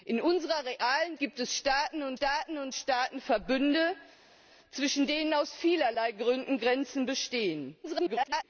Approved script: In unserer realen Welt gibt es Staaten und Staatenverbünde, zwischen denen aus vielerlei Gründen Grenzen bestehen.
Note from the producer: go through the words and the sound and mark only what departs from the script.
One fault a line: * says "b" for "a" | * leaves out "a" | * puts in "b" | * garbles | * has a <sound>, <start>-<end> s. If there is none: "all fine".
* leaves out "Welt"
* puts in "Staaten und"
* garbles